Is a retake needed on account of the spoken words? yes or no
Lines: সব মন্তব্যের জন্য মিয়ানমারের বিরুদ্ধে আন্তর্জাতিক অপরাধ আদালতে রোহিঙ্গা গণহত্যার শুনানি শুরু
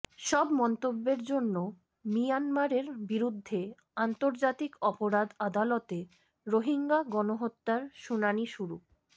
no